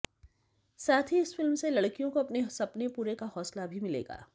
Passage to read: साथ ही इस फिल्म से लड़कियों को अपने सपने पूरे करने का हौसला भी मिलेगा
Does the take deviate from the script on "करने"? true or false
true